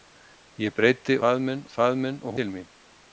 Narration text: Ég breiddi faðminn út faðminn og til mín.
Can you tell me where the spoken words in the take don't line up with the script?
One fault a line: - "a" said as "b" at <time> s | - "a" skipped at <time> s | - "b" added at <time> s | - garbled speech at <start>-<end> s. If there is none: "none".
none